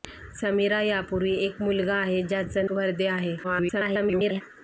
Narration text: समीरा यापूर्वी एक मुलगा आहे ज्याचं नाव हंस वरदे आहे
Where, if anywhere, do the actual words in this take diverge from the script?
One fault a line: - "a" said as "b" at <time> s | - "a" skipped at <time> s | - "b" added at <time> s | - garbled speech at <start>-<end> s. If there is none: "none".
- "नाव हंस" skipped at 2.7 s
- garbled speech at 3.4-4.4 s